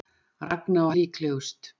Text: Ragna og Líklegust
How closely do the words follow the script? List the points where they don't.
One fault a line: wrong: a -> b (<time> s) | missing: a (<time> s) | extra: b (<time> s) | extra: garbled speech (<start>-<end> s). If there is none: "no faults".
no faults